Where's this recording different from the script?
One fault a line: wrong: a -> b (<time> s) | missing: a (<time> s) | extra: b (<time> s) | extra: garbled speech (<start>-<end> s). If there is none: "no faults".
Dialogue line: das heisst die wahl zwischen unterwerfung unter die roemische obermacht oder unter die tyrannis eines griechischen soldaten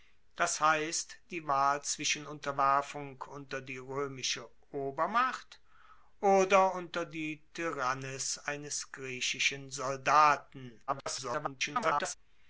extra: garbled speech (10.9-12.1 s)